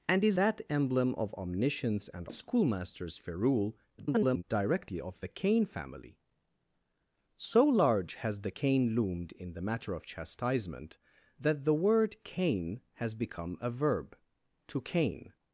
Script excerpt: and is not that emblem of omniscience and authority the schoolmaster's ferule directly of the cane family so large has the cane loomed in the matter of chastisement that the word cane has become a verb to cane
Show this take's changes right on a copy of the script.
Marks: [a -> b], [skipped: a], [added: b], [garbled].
and is [skipped: not] that emblem of omniscience and [skipped: authority the] schoolmaster's ferule [garbled] directly of the cane family so large has the cane loomed in the matter of chastisement that the word cane has become a verb to cane